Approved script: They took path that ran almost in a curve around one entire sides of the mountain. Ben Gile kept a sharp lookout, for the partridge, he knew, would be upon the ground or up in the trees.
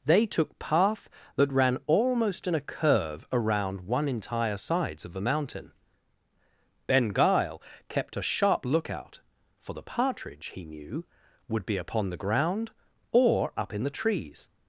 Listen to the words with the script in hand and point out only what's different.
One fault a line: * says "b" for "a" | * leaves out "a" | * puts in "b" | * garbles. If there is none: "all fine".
all fine